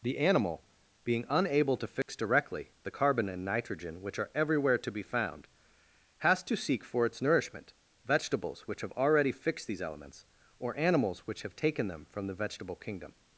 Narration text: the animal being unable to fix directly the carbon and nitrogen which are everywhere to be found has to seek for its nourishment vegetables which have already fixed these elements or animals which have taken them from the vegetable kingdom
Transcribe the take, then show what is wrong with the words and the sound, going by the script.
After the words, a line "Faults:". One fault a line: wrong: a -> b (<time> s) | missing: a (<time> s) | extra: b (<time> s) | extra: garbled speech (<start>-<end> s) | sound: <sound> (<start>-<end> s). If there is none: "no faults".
the animal being unable to fix directly the carbon and nitrogen which are everywhere to be found has to seek for its nourishment vegetables which have already fixed these elements or animals which have taken them from the vegetable kingdom
Faults:
sound: dropout (2.0-2.1 s)